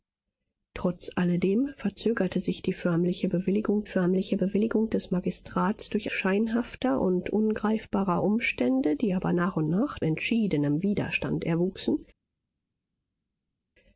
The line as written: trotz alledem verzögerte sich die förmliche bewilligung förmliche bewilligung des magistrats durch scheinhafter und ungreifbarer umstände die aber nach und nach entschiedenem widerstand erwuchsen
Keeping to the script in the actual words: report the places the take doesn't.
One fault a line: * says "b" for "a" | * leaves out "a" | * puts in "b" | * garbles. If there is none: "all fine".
all fine